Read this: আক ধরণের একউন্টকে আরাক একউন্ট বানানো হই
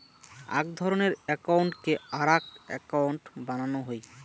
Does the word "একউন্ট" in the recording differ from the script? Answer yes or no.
no